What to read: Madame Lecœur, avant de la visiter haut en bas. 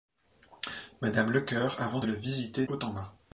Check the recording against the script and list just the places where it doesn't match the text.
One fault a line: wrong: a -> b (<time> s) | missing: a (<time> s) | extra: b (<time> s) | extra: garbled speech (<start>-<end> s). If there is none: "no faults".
no faults